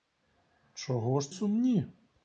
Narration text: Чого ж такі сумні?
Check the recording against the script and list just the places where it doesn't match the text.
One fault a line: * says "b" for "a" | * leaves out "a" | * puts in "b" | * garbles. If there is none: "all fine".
* leaves out "такі"